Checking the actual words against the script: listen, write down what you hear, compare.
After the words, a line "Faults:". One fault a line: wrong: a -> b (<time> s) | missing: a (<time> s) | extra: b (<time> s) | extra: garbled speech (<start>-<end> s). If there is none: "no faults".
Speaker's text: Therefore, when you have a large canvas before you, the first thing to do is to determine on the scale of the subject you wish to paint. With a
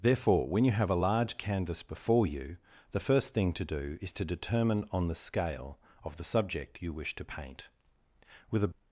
Therefore, when you have a large canvas before you, the first thing to do is to determine on the scale of the subject you wish to paint. With a
Faults:
no faults